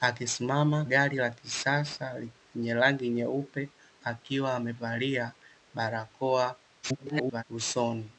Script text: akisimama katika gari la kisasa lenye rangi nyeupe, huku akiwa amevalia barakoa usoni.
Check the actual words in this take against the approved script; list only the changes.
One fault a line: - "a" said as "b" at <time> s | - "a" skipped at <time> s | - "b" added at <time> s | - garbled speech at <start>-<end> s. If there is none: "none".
- "katika" skipped at 0.8 s
- "huku" skipped at 3.7 s
- garbled speech at 6.8-7.4 s